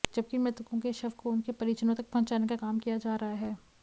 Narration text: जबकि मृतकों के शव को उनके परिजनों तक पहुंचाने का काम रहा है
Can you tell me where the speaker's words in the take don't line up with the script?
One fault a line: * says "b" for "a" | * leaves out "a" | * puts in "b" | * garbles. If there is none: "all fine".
* puts in "किया जा"